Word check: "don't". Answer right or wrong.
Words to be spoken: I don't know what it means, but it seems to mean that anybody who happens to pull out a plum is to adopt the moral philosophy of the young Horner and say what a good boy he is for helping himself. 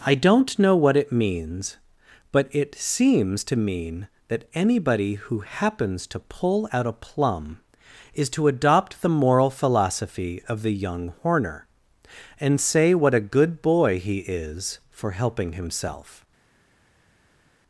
right